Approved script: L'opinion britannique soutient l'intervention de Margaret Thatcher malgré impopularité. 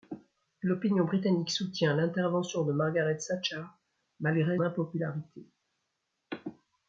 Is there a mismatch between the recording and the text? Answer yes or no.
no